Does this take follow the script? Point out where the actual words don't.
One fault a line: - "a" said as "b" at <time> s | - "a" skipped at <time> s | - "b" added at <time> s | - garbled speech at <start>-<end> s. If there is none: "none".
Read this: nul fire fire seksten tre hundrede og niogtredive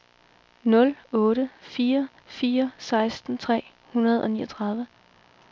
- "otte" added at 1.1 s